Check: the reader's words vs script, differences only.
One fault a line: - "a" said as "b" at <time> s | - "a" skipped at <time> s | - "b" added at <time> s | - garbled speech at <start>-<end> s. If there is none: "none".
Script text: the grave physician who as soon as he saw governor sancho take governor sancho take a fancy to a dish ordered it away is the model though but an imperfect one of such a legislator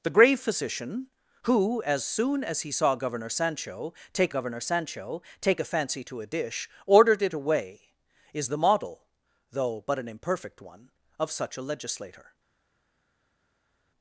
none